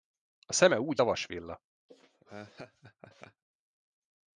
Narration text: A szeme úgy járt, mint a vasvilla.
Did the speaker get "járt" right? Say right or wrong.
wrong